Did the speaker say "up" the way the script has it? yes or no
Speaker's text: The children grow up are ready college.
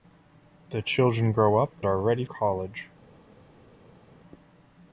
yes